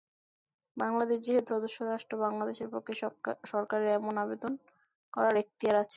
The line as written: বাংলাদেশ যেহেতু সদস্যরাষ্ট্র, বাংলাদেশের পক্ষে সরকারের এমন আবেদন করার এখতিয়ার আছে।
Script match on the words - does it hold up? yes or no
yes